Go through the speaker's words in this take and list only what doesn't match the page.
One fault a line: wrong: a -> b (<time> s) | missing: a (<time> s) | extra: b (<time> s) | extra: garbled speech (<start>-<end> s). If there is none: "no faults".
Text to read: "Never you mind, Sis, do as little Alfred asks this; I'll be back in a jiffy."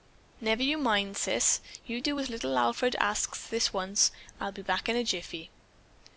extra: you (1.9 s)
extra: once (3.7 s)